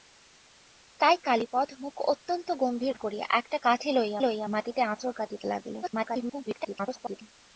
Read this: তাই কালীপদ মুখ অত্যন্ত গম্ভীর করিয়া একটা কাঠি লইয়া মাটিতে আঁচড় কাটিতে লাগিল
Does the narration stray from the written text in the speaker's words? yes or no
yes